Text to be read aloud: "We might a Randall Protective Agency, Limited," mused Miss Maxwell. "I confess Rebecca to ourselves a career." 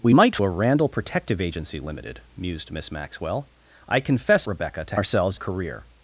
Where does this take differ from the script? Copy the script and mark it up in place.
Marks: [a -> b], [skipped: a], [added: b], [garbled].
"We might a Randall Protective Agency, Limited," mused Miss Maxwell. "I confess Rebecca to ourselves a career."